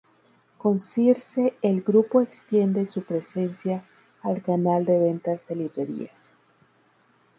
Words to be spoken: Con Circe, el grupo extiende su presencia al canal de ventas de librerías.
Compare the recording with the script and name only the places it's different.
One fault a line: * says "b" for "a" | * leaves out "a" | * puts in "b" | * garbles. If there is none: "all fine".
all fine